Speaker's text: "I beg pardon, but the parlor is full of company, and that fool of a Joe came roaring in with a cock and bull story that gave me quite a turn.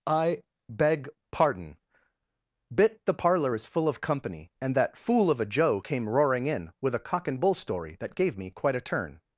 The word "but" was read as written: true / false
false